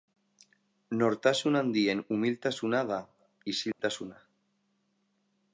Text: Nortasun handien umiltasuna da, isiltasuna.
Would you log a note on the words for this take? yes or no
no